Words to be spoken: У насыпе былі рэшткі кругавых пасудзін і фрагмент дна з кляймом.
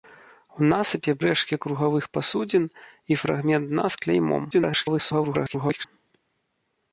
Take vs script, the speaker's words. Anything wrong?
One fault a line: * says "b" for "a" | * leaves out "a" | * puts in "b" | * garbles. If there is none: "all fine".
* leaves out "былі"
* garbles